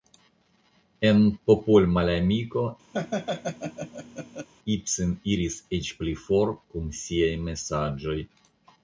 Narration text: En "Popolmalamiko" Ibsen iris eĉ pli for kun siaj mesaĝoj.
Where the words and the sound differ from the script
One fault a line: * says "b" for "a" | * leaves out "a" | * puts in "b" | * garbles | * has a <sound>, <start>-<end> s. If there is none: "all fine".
* has a laugh, 2.9-4.5 s